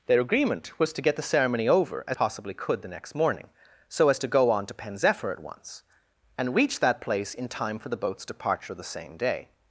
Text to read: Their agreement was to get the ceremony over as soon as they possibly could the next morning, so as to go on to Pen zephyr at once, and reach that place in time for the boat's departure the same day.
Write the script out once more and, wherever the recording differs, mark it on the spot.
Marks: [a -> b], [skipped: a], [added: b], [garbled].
Their agreement was to get the ceremony over as [skipped: soon as they] possibly could the next morning, so as to go on to Pen zephyr at once, and reach that place in time for the boat's departure the same day.